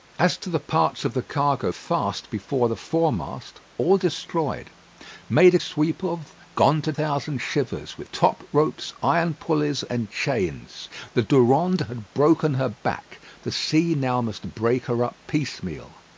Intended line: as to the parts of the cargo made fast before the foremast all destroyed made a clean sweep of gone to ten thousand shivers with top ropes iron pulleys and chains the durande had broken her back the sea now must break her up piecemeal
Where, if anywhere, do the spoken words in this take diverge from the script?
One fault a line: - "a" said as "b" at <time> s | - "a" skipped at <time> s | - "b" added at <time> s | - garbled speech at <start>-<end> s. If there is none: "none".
- "made" skipped at 1.7 s
- "clean" skipped at 5.6 s
- "ten" skipped at 6.9 s